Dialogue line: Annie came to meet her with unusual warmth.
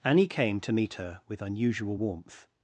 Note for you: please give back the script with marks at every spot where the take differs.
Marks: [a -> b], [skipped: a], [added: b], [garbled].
Annie came to meet her with unusual warmth.